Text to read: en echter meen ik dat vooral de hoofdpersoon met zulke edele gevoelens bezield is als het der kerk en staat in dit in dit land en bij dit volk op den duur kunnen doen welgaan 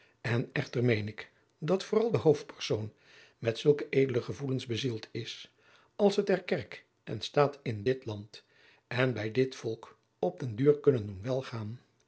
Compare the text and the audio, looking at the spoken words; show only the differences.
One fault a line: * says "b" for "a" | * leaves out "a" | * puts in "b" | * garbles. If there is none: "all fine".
* leaves out "in dit"